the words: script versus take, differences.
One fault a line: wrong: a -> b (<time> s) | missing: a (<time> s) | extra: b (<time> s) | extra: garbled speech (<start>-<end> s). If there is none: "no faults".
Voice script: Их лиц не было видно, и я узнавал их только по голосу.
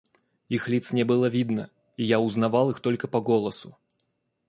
no faults